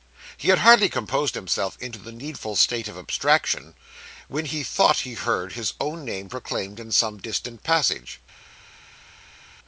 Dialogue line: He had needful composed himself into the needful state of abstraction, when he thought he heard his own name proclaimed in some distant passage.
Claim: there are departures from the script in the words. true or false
true